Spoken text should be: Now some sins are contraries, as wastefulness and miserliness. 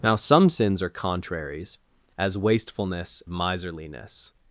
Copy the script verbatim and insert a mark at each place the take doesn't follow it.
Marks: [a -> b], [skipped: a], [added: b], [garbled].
Now some sins are contraries, as wastefulness [skipped: and] miserliness.